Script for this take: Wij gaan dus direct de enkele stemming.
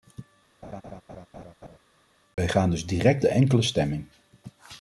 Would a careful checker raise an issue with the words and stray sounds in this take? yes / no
yes